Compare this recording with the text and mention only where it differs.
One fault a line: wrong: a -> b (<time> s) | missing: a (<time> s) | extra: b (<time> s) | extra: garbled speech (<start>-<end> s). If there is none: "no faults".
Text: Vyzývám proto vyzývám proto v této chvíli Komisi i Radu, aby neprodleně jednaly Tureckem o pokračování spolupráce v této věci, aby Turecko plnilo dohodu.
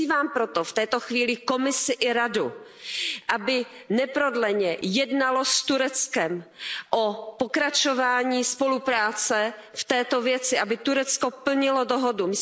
missing: vyzývám proto (0.6 s)
extra: s (5.5 s)